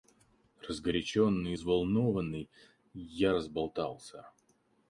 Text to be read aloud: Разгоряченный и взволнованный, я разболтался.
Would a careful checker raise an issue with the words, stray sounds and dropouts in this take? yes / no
no